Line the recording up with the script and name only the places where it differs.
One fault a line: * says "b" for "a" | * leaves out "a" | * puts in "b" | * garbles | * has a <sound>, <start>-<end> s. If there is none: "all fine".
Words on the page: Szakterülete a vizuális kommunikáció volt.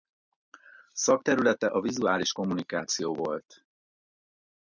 all fine